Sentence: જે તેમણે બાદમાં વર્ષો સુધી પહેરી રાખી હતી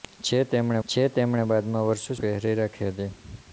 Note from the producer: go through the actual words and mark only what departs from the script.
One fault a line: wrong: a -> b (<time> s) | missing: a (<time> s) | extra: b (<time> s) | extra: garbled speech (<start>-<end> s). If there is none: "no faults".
extra: જે તેમણે (0.9 s)
missing: સુધી (2.2 s)